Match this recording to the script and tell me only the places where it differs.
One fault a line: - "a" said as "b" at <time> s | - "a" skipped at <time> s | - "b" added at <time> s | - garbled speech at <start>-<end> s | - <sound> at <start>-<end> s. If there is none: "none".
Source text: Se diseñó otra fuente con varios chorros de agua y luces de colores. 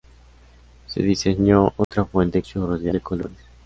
- dropout at 1.8-1.9 s
- "con varios" skipped at 2.4 s
- "agua y luces" skipped at 2.9 s